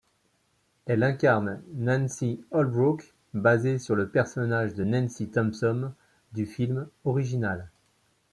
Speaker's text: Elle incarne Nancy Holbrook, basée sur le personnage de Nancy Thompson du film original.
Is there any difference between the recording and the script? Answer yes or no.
no